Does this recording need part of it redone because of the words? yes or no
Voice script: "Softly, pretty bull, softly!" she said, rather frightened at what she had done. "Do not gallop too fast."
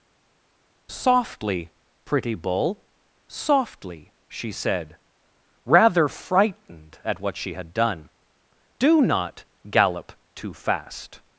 no